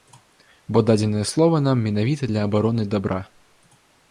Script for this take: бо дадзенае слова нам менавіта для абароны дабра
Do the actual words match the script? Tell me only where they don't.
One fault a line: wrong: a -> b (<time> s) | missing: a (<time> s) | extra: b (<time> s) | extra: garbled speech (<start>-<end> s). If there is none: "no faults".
no faults